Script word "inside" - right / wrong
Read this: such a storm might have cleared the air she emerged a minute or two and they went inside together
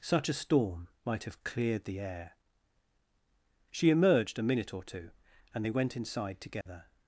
right